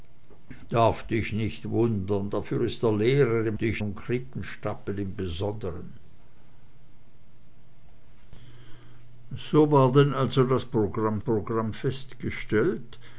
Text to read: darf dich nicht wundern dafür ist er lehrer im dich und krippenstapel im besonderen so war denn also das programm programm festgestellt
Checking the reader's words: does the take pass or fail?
pass